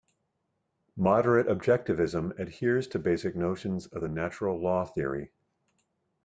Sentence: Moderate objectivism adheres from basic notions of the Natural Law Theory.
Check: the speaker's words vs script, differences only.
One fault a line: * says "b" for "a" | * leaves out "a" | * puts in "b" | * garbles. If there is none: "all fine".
* says "to" for "from"